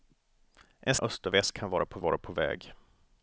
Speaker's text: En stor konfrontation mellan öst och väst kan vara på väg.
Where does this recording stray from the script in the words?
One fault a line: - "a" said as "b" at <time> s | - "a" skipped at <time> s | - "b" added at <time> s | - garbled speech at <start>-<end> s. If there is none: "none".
- "stor konfrontation mellan" skipped at 0.9 s
- "vara på" added at 2.0 s